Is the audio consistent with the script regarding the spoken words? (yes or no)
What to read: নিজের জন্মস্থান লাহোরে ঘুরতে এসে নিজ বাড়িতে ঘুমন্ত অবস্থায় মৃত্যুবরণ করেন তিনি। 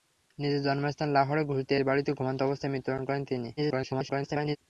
no